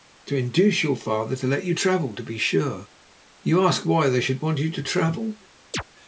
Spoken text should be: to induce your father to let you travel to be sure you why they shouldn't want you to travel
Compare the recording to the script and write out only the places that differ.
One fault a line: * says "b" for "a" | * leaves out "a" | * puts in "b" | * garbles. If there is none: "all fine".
* puts in "ask"
* says "should" for "shouldn't"